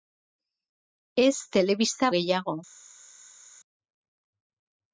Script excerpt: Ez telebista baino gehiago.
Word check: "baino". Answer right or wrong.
wrong